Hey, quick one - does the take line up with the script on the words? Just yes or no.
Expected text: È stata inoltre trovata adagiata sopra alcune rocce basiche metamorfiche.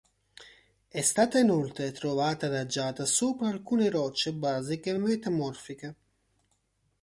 yes